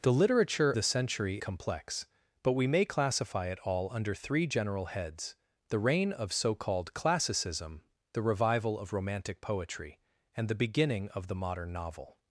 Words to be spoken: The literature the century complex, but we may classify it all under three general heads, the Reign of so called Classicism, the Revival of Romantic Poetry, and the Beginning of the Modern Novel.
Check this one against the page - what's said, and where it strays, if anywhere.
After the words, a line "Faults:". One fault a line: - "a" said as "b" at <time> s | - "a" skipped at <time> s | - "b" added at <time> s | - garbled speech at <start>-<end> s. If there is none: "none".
The literature the century complex, but we may classify it all under three general heads, the Reign of so called Classicism, the Revival of Romantic Poetry, and the Beginning of the Modern Novel.
Faults:
none